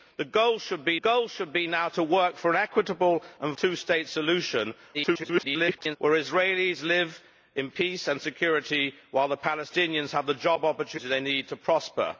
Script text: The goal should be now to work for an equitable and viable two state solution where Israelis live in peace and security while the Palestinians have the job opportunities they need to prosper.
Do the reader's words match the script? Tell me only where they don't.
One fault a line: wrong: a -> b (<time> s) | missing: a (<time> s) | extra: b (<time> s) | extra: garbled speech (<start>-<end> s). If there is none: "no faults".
extra: goal should be (1.0 s)
missing: viable (3.5 s)
extra: garbled speech (4.9-6.0 s)